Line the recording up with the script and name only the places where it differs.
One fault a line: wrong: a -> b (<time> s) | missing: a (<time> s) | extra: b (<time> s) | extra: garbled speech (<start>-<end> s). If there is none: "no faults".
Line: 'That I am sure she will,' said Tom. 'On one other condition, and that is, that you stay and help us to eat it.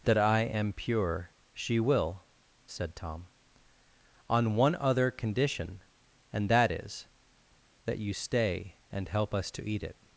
wrong: sure -> pure (0.7 s)